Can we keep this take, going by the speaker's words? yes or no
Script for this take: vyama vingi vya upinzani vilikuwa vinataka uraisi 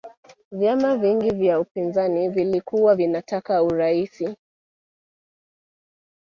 yes